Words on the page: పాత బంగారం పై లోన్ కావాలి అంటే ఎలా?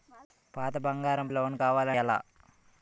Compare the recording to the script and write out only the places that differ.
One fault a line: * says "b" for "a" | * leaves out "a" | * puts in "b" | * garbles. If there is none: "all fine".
* leaves out "పై"
* leaves out "అంటే"